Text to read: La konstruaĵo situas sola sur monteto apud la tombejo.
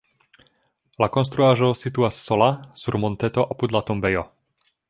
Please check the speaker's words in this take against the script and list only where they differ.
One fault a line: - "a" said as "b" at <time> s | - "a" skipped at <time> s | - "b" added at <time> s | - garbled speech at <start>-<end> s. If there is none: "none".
none